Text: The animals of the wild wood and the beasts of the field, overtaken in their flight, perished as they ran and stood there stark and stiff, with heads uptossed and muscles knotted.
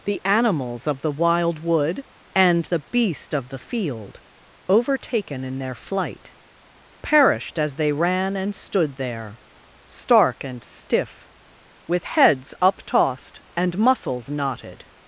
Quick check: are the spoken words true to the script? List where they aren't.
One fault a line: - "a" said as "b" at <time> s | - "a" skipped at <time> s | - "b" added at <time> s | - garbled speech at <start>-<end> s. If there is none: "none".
- "beasts" said as "beast" at 2.8 s